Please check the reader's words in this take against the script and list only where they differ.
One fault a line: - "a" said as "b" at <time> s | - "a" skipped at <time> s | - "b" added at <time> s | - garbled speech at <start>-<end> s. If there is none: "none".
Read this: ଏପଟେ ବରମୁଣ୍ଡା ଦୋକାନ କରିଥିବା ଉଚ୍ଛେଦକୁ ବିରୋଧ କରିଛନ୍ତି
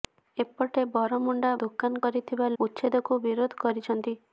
none